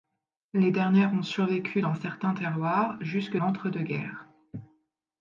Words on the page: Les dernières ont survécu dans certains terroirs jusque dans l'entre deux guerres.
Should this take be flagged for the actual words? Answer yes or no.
yes